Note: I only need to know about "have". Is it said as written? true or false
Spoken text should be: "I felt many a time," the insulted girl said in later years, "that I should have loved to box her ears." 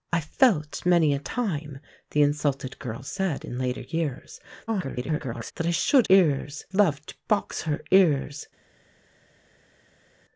false